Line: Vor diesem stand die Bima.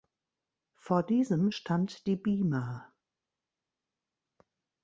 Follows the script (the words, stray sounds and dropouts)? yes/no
yes